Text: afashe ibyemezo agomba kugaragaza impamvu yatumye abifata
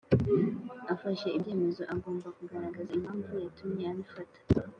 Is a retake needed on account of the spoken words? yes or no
no